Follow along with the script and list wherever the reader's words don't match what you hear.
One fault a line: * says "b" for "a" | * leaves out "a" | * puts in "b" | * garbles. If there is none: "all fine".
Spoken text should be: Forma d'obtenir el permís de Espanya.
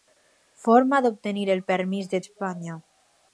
all fine